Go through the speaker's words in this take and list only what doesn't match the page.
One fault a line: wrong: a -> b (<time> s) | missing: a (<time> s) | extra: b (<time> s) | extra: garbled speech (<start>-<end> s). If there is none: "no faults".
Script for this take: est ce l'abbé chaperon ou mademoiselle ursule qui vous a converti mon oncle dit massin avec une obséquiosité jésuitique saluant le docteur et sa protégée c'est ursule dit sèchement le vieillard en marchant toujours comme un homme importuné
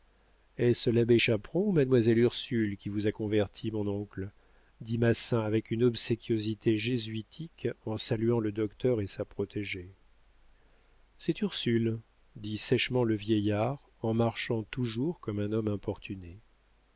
extra: en (7.8 s)